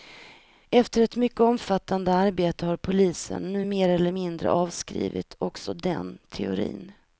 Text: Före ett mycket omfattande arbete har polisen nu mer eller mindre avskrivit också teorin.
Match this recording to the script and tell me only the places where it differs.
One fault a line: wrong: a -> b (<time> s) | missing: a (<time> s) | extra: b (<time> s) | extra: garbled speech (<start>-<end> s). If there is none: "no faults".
wrong: Före -> Efter (0.7 s)
extra: den (5.7 s)